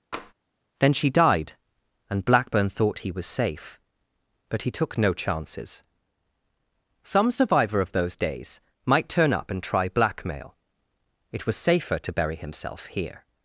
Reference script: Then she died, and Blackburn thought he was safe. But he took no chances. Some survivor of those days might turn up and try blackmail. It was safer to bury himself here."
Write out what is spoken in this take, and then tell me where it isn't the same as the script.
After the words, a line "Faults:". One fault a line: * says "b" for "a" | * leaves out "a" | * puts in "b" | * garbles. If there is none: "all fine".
Then she died, and Blackburn thought he was safe. But he took no chances. Some survivor of those days might turn up and try blackmail. It was safer to bury himself here."
Faults:
all fine